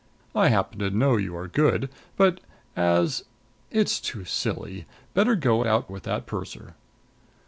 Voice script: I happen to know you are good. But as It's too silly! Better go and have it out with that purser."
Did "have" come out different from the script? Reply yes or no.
yes